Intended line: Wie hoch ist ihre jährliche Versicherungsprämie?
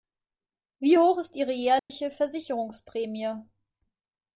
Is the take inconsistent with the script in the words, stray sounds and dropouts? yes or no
yes